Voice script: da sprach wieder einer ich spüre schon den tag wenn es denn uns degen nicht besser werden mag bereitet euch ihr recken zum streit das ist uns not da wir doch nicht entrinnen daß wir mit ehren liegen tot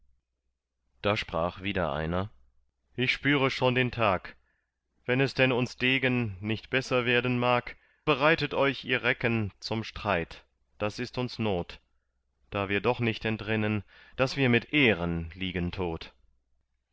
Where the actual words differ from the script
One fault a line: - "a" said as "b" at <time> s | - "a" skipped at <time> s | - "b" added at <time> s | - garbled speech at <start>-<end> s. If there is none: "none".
none